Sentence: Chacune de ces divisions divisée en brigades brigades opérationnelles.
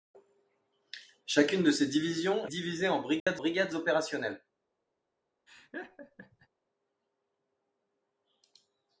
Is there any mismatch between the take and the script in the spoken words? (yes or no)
no